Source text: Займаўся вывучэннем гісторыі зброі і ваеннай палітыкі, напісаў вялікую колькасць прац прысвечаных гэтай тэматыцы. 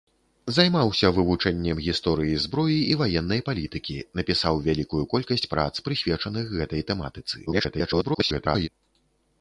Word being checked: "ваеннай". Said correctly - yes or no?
yes